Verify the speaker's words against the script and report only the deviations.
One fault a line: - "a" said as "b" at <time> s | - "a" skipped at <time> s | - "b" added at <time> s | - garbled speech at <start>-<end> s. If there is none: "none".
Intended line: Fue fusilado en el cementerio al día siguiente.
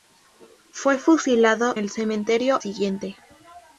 - "en" skipped at 1.8 s
- "al día" skipped at 2.6 s